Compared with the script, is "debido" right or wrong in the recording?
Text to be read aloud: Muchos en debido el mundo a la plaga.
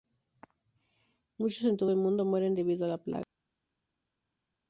wrong